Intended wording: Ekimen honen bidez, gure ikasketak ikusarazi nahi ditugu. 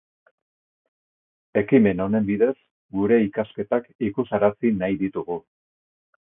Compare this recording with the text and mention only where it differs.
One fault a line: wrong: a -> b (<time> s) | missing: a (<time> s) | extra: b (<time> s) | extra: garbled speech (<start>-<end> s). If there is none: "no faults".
no faults